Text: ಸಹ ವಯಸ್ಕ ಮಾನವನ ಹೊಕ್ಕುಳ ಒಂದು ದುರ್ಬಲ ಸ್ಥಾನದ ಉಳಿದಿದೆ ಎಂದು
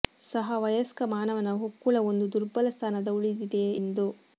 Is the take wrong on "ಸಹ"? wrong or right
right